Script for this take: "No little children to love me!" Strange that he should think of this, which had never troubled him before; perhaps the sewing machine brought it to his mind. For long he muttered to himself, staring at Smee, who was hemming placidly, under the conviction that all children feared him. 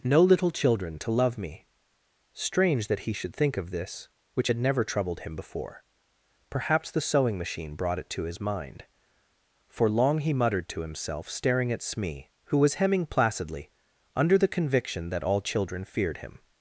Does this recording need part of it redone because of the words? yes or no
no